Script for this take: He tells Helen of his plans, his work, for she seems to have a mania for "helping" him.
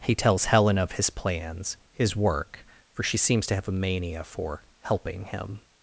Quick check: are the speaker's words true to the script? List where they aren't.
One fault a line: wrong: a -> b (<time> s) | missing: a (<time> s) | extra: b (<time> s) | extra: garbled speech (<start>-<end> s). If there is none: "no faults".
no faults